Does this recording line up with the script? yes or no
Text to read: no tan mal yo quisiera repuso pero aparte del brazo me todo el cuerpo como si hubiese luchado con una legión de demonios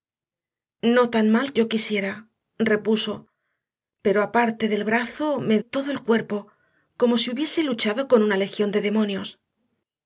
yes